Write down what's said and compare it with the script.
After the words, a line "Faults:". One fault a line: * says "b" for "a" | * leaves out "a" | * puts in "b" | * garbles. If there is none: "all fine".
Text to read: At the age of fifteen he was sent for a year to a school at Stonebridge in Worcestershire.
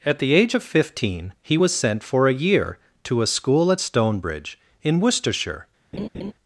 At the age of fifteen he was sent for a year to a school at Stonebridge in Worcestershire.
Faults:
all fine